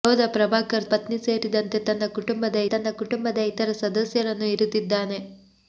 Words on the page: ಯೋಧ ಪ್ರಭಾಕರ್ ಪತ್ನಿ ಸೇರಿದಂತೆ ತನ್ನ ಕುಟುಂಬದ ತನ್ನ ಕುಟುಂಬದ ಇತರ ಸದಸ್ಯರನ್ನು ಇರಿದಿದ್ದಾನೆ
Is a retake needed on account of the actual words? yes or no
no